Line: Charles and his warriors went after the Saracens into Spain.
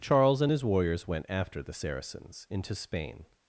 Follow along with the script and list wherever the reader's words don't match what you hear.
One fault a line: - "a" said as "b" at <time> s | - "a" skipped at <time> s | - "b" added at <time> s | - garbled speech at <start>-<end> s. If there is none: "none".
none